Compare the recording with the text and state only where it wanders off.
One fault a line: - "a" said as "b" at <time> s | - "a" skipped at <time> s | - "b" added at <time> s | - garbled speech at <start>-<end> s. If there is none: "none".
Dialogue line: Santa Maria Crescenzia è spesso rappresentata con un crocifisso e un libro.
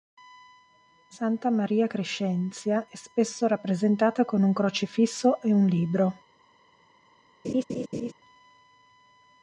none